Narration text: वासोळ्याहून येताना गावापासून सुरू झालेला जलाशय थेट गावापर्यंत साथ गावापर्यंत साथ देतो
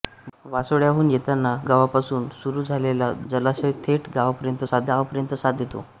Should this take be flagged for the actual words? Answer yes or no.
no